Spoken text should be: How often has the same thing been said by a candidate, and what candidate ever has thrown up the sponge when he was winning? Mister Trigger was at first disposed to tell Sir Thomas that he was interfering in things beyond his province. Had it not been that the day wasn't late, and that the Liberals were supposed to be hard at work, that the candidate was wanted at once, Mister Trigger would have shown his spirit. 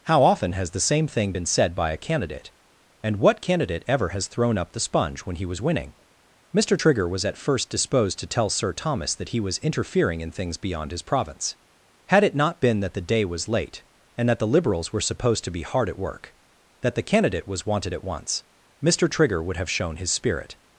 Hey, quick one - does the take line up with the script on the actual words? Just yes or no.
no